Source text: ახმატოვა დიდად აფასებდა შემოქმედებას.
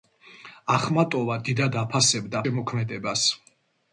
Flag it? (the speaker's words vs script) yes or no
no